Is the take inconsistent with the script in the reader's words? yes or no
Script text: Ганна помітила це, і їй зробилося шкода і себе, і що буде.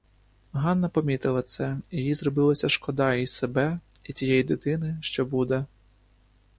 yes